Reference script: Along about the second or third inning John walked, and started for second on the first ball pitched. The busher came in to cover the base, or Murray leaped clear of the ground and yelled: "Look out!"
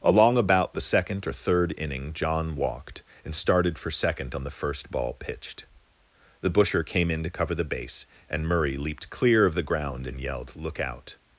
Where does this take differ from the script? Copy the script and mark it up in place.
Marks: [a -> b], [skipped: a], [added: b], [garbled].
Along about the second or third inning John walked, and started for second on the first ball pitched. The busher came in to cover the base, [or -> and] Murray leaped clear of the ground and yelled: "Look out!"